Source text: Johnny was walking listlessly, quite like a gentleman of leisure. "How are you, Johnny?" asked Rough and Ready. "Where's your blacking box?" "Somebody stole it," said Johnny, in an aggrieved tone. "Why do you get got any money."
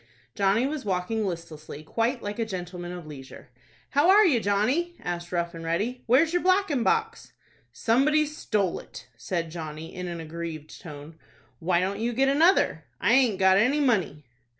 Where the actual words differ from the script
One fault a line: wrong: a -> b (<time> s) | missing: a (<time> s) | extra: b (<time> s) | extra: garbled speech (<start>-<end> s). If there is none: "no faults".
wrong: do -> don't (11.8 s)
extra: another I aint (12.3 s)